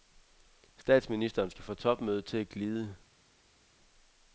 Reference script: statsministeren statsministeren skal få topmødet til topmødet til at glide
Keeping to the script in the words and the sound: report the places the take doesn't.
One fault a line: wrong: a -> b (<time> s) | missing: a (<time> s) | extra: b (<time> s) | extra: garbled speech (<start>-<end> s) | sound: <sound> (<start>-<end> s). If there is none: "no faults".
missing: statsministeren (1.5 s)
missing: topmødet til (2.4 s)